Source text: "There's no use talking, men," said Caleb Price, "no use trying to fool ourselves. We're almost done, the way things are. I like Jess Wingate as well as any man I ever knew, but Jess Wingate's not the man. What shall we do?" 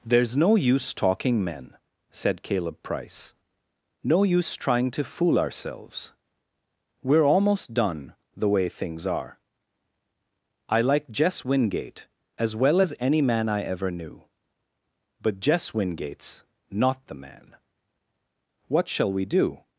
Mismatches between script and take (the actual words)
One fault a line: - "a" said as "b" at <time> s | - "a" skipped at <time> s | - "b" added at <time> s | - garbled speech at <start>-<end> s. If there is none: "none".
none